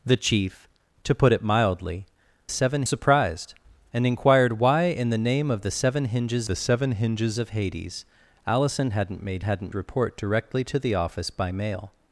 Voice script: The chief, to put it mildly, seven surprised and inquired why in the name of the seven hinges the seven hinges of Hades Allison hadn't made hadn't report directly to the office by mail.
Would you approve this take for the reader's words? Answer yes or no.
yes